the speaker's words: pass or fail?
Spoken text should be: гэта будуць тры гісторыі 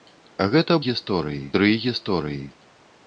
fail